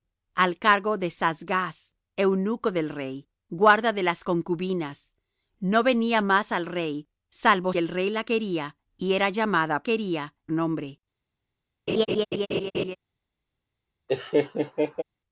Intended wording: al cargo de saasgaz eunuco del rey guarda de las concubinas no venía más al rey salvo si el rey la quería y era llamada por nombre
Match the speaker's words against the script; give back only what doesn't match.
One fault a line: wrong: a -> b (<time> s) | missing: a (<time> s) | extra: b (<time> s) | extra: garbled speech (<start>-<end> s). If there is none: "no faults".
missing: si (7.7 s)
wrong: por -> quería (9.8 s)